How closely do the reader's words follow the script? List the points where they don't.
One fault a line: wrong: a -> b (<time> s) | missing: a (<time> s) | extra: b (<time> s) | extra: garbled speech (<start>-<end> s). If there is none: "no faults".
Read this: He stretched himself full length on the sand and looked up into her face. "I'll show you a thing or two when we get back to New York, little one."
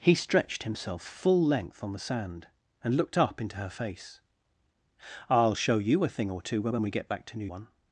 extra: when (6.7 s)
missing: York little (7.5 s)